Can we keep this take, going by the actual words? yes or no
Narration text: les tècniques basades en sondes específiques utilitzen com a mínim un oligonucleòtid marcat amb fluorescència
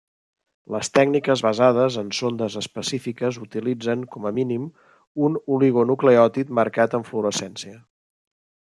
yes